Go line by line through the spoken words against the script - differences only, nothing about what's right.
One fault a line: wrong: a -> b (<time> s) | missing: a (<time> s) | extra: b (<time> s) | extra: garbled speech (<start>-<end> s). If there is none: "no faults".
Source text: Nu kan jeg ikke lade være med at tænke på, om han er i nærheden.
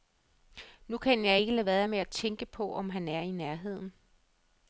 no faults